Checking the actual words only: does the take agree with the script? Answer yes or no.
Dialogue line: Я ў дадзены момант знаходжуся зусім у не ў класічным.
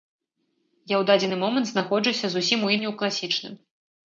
yes